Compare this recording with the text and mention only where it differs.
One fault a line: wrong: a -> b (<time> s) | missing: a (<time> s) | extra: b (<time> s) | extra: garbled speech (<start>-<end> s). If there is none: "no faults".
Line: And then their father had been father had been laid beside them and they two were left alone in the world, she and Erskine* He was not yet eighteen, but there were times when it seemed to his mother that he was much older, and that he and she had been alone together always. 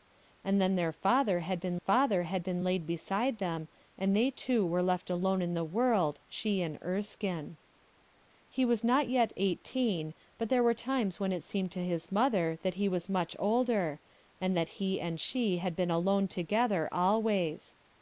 no faults